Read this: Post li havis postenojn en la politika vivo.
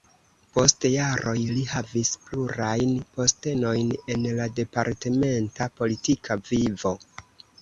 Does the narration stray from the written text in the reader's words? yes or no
yes